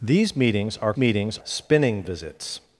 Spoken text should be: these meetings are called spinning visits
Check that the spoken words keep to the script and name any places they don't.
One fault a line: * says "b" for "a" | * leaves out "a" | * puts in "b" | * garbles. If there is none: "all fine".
* says "meetings" for "called"